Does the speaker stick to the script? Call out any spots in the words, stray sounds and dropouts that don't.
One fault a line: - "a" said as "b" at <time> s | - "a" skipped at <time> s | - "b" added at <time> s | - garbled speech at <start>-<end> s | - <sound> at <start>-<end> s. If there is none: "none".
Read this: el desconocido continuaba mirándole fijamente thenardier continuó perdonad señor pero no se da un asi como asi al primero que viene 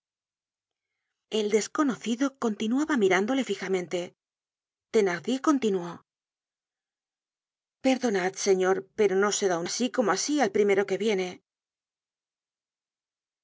none